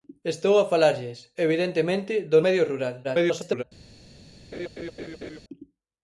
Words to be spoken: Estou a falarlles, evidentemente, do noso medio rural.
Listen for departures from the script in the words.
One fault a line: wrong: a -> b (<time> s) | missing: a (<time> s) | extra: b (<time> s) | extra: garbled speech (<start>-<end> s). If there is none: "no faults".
missing: noso (2.4 s)
extra: garbled speech (3.0-3.6 s)